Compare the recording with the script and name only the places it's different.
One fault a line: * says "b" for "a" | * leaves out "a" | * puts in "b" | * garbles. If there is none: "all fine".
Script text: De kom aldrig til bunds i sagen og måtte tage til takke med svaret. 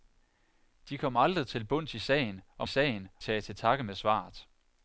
* says "sagen" for "måtte"